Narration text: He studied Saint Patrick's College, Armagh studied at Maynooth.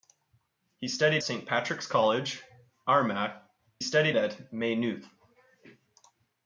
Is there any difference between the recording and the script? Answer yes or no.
no